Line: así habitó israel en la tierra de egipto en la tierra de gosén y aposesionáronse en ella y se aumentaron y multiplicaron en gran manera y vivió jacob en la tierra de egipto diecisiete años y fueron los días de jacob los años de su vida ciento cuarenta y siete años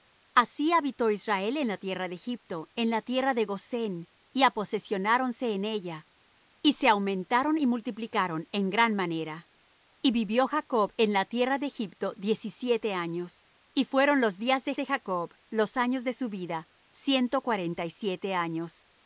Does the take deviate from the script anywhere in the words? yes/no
yes